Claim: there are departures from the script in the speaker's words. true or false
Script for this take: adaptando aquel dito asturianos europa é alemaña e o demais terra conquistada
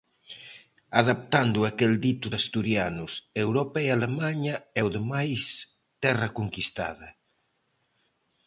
false